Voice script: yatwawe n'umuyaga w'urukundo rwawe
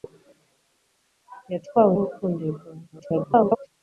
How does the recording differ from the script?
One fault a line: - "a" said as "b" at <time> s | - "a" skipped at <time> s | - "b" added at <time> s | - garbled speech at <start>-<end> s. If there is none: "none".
- "n'umuyaga" skipped at 1.9 s
- garbled speech at 2.9-3.7 s